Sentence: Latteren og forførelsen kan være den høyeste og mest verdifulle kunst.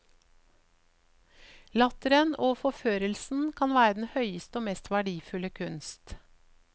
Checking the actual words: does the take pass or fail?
pass